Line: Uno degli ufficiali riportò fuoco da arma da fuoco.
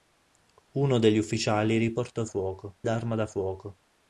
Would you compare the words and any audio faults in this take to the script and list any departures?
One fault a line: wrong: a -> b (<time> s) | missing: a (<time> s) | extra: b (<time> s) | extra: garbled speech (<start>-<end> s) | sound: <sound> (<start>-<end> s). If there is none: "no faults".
no faults